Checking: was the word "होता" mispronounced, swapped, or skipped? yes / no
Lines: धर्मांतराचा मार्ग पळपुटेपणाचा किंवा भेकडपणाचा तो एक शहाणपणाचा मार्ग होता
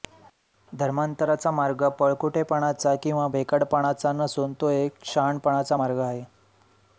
yes